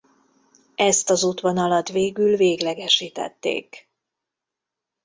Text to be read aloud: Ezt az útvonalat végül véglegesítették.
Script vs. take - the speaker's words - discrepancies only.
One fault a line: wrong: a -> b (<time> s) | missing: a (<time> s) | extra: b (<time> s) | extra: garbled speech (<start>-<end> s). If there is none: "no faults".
no faults